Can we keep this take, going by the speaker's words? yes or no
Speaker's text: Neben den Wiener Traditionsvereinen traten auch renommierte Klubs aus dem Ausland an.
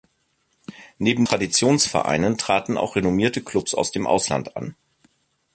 no